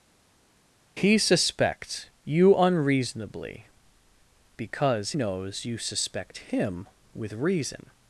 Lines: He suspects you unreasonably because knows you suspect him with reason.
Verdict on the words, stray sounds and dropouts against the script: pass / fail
pass